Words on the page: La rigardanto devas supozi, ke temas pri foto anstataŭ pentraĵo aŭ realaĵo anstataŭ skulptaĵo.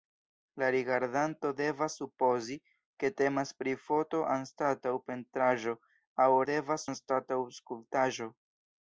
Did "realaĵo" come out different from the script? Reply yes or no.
yes